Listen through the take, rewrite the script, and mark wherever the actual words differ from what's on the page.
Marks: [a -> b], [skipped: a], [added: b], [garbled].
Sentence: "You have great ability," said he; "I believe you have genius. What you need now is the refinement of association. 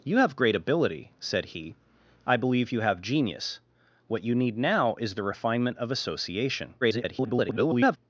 "You have great ability," said he; "I believe you have genius. What you need now is the refinement of association. [garbled]